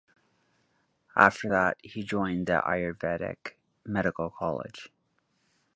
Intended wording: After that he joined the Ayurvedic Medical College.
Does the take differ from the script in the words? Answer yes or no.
no